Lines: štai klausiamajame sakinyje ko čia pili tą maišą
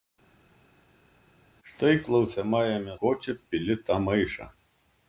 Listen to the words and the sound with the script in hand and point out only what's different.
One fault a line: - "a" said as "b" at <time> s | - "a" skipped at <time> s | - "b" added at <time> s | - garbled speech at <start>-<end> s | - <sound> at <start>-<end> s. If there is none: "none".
- "sakinyje" skipped at 2.9 s